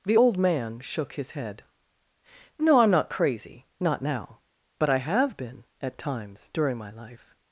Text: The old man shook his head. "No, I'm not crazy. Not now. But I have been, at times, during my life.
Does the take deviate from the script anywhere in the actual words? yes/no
no